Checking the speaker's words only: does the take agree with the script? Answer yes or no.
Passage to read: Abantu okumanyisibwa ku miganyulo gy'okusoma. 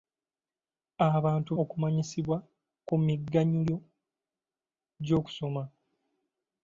yes